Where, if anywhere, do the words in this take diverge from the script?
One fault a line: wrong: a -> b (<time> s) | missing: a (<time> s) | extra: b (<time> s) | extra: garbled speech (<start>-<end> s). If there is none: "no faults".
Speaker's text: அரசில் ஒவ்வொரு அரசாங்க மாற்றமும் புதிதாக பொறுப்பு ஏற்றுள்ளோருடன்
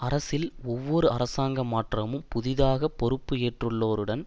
no faults